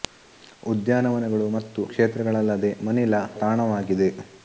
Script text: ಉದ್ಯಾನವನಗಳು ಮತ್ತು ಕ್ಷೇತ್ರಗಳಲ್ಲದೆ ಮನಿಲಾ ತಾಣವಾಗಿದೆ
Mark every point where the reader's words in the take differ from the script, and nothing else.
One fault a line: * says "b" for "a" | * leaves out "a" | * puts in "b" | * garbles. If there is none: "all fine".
all fine